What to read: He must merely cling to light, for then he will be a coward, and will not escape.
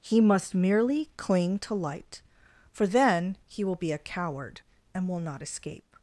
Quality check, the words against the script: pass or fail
pass